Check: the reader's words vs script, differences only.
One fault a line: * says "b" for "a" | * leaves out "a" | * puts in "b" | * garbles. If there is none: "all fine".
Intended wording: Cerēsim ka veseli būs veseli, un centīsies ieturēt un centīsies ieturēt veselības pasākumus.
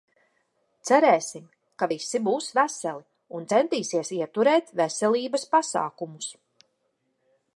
* says "visi" for "veseli"
* leaves out "un centīsies ieturēt"